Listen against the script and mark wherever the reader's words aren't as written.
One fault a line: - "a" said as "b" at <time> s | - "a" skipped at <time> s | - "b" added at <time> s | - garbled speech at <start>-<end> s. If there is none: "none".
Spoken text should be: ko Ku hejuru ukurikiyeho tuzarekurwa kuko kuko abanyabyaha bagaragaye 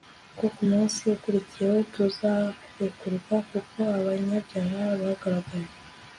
- "hejuru" said as "munsi" at 0.7 s
- "kuko" skipped at 3.8 s